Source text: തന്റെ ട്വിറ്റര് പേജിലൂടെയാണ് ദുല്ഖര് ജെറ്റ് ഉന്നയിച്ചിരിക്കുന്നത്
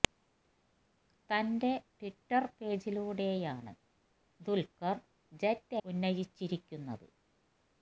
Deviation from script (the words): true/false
false